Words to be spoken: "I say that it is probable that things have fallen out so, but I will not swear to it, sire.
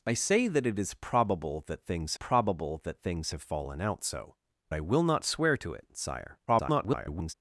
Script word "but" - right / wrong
wrong